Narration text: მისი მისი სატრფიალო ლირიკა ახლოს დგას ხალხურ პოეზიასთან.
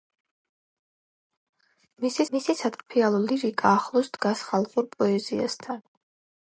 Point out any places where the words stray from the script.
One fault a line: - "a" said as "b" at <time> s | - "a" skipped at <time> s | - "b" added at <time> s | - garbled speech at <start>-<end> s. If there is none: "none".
none